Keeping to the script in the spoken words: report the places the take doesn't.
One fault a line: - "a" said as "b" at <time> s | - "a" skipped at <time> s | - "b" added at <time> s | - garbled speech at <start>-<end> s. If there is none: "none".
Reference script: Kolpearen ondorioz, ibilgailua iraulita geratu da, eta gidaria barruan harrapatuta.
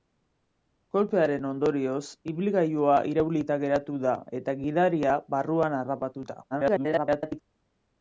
- garbled speech at 6.5-7.4 s